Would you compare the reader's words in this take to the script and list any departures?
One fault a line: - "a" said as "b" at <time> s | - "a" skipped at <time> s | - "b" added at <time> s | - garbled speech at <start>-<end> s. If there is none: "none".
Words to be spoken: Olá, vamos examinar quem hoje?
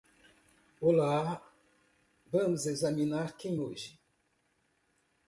none